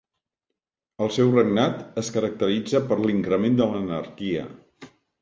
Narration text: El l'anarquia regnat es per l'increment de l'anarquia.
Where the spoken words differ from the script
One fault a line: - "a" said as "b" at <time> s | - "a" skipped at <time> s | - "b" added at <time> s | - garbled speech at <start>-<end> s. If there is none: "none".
- "l'anarquia" said as "seu" at 1.2 s
- "caracteritza" added at 2.2 s